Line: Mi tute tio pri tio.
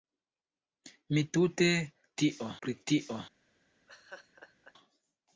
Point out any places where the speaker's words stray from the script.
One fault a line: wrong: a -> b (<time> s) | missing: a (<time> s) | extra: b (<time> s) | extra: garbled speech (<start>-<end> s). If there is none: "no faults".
no faults